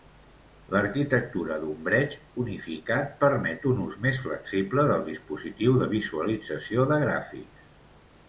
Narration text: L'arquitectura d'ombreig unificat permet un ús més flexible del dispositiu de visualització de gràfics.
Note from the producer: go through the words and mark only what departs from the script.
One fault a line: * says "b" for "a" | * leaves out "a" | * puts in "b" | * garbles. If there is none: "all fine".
all fine